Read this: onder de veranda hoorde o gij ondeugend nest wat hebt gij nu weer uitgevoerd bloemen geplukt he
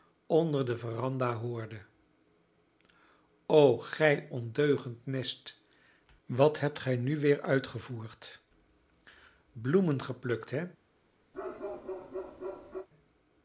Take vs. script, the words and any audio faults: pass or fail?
fail